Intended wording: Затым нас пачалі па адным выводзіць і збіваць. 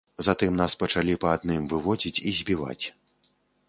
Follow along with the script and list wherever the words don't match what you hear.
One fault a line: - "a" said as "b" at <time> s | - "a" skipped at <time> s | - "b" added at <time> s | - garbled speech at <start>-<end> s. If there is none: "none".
none